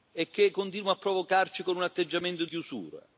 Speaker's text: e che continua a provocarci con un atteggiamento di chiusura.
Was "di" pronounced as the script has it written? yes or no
no